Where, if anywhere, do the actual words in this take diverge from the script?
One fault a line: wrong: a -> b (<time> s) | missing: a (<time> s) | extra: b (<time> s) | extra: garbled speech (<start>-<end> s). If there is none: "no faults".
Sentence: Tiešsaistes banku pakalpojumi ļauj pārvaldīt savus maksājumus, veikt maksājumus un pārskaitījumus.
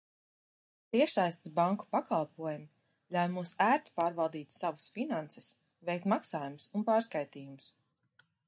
extra: mums ērti (3.4 s)
wrong: maksājumus -> finanses (5.0 s)